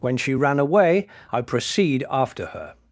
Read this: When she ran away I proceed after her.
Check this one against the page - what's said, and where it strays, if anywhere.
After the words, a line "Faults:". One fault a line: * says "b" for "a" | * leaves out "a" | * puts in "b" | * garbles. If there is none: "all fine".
When she ran away I proceed after her.
Faults:
all fine